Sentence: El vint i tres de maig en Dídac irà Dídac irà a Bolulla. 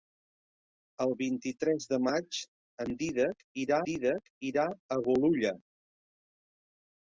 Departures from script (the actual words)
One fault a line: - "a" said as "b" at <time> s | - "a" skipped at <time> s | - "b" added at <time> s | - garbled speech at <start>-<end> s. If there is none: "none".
none